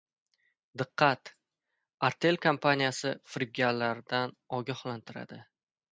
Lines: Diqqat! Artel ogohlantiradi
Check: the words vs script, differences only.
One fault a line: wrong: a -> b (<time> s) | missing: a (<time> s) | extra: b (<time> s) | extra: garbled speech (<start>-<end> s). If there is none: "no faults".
extra: kompaniyasi firibgarlardan (2.5 s)